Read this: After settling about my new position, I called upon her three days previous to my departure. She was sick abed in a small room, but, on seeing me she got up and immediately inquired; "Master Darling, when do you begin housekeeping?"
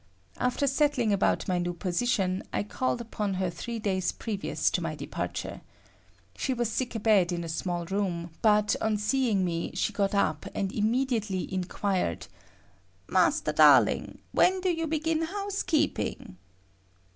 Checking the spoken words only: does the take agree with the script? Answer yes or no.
yes